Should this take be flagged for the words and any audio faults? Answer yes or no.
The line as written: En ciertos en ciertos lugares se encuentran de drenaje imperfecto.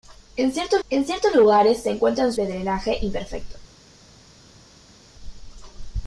no